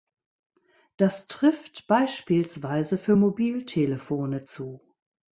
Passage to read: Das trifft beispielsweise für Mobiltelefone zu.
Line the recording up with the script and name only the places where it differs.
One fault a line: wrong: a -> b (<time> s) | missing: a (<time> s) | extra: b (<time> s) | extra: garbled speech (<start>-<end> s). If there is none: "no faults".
no faults